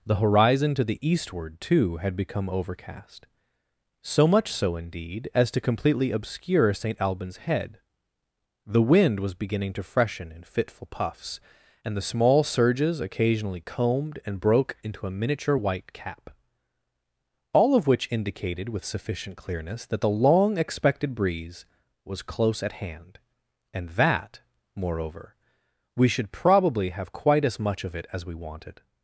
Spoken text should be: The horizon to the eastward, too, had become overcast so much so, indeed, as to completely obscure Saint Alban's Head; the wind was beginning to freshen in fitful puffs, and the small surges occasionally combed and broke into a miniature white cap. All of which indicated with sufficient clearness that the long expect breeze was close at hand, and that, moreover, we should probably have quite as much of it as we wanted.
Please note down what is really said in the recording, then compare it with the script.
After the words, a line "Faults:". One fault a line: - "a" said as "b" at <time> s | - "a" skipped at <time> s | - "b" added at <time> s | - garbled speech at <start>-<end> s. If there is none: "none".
The horizon to the eastward, too, had become overcast so much so, indeed, as to completely obscure Saint Alban's Head; the wind was beginning to freshen in fitful puffs, and the small surges occasionally combed and broke into a miniature white cap. All of which indicated with sufficient clearness that the long expected breeze was close at hand, and that, moreover, we should probably have quite as much of it as we wanted.
Faults:
- "expect" said as "expected" at 20.6 s